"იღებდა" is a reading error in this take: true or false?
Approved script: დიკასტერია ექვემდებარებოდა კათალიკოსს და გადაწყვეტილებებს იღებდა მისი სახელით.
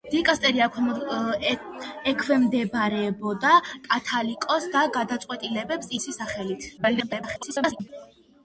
true